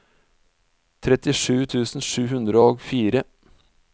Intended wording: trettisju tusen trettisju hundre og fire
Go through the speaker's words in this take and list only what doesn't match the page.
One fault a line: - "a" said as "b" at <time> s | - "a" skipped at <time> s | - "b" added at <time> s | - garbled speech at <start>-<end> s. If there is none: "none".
- "trettisju" said as "sju" at 2.1 s